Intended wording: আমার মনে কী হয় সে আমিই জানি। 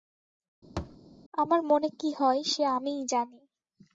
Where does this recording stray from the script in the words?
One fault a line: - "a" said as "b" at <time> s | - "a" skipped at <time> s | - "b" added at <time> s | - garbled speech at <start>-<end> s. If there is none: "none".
none